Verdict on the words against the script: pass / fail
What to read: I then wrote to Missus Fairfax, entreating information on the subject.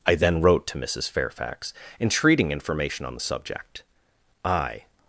fail